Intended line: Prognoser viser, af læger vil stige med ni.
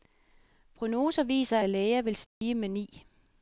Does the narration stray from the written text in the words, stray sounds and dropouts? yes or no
yes